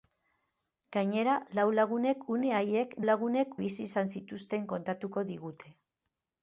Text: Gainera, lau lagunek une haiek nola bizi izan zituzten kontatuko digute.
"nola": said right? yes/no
no